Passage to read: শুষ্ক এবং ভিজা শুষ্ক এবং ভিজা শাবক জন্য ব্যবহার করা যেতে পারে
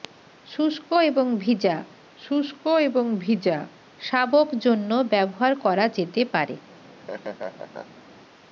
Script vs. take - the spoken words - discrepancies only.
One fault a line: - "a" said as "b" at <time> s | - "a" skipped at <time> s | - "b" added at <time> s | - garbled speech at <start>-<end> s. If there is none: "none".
none